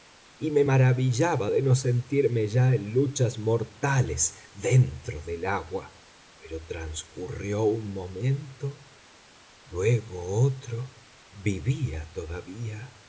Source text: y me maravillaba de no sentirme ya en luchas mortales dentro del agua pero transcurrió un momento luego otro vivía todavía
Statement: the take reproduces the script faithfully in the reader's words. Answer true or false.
true